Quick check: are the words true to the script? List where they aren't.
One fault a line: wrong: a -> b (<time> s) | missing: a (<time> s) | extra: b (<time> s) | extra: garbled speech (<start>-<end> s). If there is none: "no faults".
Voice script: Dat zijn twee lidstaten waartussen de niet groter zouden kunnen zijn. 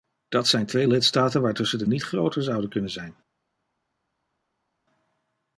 no faults